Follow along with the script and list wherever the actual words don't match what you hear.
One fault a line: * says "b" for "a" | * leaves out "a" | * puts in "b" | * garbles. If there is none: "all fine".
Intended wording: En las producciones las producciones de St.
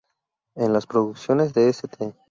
* leaves out "las producciones"